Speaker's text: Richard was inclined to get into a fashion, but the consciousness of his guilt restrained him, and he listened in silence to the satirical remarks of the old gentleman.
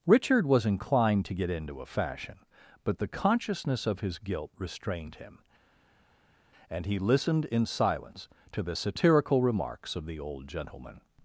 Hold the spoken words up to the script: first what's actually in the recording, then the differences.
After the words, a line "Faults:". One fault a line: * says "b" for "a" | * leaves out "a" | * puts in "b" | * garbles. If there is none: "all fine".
Richard was inclined to get into a fashion, but the consciousness of his guilt restrained him, and he listened in silence to the satirical remarks of the old gentleman.
Faults:
all fine